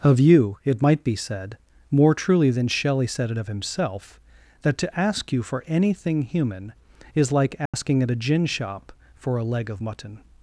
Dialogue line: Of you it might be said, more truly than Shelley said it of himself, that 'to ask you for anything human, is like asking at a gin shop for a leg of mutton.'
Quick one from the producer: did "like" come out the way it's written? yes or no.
yes